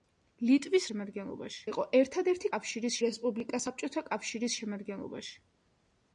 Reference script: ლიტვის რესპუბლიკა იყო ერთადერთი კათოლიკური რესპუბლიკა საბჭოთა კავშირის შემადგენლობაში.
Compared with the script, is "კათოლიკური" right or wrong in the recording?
wrong